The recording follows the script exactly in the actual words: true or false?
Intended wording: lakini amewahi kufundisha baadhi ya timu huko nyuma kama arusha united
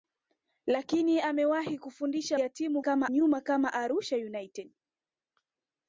false